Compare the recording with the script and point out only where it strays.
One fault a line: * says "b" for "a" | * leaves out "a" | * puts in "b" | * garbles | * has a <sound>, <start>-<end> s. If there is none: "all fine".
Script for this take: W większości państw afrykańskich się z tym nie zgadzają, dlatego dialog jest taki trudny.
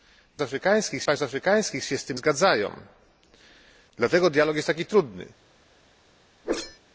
* says "afrykańskich" for "większości"
* leaves out "nie"
* has a whoosh, 6.4-6.8 s